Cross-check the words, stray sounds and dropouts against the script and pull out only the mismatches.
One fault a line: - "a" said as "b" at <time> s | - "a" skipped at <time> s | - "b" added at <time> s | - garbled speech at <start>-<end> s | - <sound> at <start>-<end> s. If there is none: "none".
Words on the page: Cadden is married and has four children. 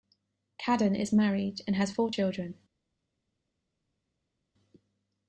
none